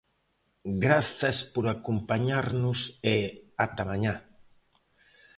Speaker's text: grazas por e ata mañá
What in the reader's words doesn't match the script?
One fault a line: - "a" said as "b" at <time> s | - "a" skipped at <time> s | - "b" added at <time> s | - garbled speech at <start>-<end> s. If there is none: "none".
- "acompañarnos" added at 1.8 s